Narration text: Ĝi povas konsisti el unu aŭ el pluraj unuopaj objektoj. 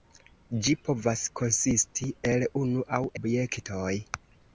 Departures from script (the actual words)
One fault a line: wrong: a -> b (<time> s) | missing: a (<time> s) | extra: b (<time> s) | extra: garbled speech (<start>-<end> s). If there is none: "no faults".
missing: el pluraj unuopaj (3.0 s)